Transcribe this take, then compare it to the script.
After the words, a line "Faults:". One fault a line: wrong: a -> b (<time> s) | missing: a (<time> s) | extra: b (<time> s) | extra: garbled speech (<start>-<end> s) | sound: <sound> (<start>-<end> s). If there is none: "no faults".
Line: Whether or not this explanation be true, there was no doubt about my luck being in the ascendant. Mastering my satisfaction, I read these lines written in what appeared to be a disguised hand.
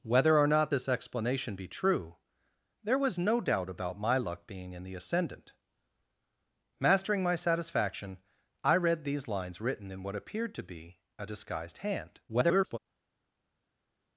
Whether or not this explanation be true, there was no doubt about my luck being in the ascendant. Mastering my satisfaction, I read these lines written in what appeared to be a disguised hand. [garbled]
Faults:
extra: garbled speech (12.3-12.8 s)